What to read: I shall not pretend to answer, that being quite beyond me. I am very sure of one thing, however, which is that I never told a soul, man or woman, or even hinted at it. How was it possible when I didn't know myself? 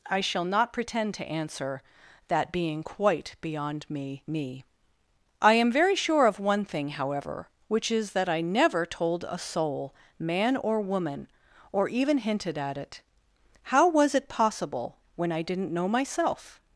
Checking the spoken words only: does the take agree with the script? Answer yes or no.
no